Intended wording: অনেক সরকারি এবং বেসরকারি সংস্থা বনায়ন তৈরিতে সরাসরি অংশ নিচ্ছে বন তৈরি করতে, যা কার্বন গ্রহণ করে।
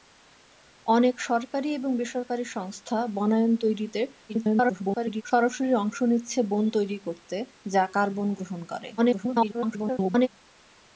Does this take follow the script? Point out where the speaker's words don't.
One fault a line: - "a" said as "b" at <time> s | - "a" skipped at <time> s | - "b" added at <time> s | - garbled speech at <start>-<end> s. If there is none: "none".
- garbled speech at 4.3-5.2 s
- garbled speech at 9.0-10.3 s